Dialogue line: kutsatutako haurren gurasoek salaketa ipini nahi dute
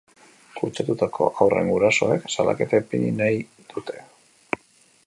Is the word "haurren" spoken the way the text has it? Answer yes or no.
yes